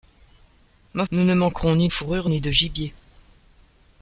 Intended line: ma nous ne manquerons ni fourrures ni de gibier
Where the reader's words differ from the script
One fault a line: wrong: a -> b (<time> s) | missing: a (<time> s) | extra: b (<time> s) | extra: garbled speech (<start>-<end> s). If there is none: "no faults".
no faults